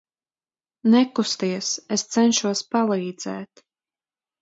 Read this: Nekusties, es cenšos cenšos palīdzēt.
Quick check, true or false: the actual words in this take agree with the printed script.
false